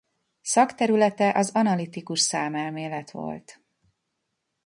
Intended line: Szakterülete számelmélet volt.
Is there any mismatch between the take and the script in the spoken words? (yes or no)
yes